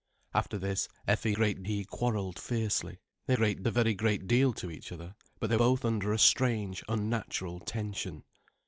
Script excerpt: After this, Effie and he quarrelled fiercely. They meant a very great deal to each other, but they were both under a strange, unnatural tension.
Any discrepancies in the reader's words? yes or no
yes